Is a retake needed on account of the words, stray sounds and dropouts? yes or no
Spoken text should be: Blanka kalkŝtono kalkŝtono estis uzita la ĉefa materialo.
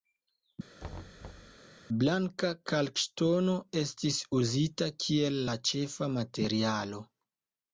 yes